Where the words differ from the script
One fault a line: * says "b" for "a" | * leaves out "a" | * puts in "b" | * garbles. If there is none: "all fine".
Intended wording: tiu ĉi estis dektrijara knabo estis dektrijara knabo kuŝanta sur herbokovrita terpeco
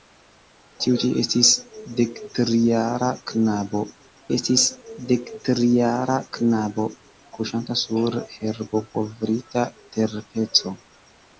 all fine